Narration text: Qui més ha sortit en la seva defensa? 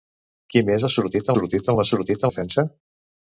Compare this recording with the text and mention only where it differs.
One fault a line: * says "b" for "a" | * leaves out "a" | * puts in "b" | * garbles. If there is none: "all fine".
* puts in "sortit"
* says "sortit" for "seva"